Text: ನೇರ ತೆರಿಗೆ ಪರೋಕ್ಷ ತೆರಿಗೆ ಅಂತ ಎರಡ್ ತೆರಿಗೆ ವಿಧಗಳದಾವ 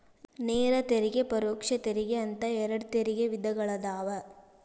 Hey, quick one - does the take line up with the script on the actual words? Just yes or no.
yes